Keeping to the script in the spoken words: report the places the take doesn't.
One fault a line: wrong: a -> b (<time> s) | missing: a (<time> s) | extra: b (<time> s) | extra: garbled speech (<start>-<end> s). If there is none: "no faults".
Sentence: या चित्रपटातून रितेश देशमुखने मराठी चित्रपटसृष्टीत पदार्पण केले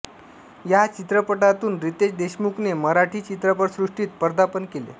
no faults